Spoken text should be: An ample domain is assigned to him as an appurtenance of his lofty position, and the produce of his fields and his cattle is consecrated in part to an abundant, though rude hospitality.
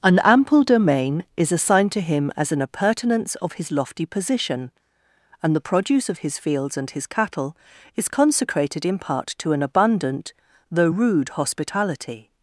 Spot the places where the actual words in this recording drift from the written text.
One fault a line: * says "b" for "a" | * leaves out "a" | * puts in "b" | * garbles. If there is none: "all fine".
all fine